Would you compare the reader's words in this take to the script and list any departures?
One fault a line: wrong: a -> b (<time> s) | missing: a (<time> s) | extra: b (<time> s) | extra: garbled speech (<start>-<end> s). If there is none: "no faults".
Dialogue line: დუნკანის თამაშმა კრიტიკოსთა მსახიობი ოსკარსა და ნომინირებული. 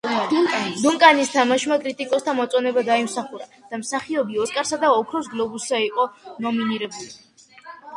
extra: მოწონება დაიმსახურა და (2.4 s)
extra: ოქროს გლობუსზე იყო (5.0 s)